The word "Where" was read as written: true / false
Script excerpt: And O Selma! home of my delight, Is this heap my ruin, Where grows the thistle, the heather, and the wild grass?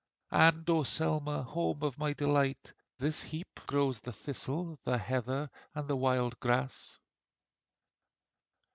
false